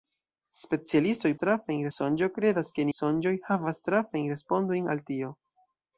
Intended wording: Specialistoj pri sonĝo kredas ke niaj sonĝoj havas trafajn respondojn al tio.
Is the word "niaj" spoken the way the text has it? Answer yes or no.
no